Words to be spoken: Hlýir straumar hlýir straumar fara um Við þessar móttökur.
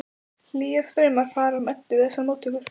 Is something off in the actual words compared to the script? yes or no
yes